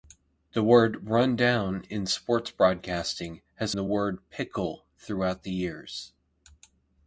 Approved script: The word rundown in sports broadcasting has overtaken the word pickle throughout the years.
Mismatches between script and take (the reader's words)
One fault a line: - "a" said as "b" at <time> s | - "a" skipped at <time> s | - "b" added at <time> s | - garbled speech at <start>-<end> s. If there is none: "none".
- "overtaken" skipped at 3.8 s